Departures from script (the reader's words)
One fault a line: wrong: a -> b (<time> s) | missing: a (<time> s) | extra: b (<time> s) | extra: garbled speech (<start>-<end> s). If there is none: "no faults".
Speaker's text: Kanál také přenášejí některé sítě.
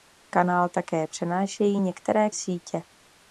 no faults